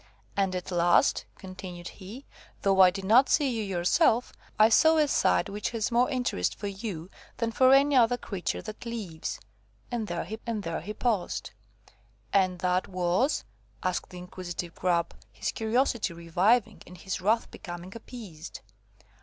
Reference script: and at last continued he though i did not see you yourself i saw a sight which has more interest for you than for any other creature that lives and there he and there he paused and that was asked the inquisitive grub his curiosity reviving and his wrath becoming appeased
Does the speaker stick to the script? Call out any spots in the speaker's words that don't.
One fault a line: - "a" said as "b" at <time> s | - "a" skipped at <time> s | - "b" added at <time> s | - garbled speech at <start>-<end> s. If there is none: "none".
none